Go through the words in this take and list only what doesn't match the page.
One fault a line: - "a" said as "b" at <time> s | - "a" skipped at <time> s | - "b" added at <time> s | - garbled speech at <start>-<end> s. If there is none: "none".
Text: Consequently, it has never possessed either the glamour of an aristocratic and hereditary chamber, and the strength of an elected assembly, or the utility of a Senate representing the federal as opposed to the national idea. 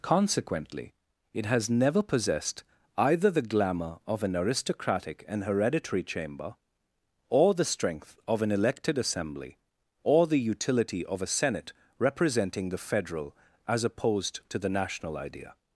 - "and" said as "or" at 7.3 s